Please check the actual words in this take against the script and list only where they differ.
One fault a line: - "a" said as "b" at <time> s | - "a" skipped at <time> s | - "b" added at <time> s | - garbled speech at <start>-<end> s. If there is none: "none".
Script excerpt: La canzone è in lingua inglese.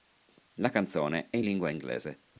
none